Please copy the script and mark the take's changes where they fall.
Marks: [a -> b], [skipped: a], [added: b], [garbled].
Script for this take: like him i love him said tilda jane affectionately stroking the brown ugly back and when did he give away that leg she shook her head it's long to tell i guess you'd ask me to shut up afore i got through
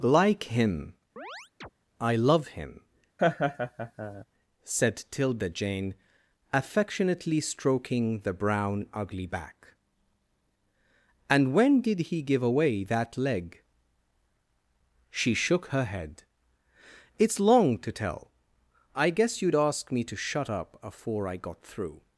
like him i love him said tilda jane affectionately stroking the brown ugly back and when did he give away that leg she shook her head it's long to tell i guess you'd ask me to shut up afore i got through